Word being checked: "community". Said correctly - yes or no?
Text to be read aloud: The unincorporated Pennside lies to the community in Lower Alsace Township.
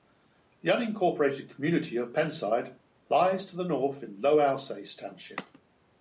no